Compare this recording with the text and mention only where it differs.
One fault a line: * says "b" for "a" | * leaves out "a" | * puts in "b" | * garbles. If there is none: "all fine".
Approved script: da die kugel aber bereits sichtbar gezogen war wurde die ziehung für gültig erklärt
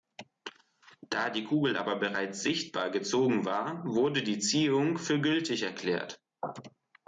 all fine